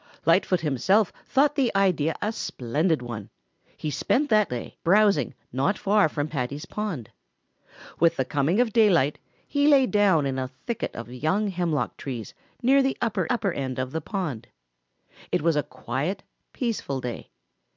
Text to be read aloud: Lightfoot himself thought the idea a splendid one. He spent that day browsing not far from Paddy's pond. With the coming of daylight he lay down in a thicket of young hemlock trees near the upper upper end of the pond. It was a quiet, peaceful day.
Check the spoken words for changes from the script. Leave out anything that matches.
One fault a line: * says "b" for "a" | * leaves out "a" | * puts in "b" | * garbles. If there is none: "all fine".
all fine